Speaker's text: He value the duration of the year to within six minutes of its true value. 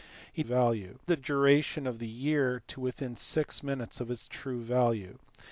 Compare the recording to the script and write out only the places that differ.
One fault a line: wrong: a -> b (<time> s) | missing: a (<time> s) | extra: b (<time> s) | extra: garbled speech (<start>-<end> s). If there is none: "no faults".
no faults